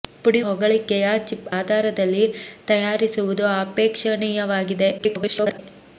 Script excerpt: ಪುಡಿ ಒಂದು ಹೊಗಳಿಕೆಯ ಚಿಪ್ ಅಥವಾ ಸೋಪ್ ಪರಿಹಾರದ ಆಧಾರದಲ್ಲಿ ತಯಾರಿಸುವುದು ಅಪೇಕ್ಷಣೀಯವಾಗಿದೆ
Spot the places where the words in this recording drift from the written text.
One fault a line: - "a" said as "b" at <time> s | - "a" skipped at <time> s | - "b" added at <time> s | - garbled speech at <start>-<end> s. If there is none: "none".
- "ಒಂದು" skipped at 0.4 s
- "ಅಥವಾ ಸೋಪ್ ಪರಿಹಾರದ" skipped at 1.5 s
- garbled speech at 5.0-5.6 s